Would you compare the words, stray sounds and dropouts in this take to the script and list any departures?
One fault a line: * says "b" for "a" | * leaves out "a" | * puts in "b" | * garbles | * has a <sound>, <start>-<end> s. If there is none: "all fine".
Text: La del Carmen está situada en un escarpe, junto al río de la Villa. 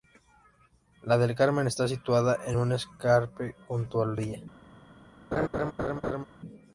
* leaves out "río de la"
* has a laugh, 5.3-6.2 s